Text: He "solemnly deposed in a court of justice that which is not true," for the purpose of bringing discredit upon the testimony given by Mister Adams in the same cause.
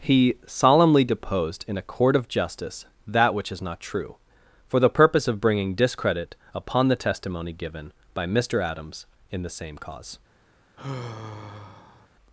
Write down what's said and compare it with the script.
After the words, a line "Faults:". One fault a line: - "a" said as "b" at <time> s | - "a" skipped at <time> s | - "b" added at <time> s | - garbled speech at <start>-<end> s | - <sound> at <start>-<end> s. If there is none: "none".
He "solemnly deposed in a court of justice that which is not true," for the purpose of bringing discredit upon the testimony given by Mister Adams in the same cause.
Faults:
- sigh at 10.8-12.1 s